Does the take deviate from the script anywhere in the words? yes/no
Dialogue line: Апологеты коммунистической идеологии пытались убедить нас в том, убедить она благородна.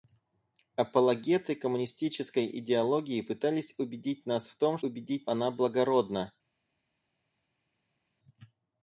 no